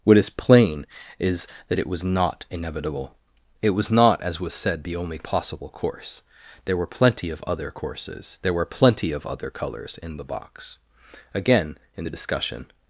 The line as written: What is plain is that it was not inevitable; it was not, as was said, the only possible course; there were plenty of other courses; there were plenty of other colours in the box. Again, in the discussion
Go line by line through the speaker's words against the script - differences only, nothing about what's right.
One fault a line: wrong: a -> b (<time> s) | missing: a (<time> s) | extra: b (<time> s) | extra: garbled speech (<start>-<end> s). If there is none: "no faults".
no faults